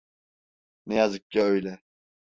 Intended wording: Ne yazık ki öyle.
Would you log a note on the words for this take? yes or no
no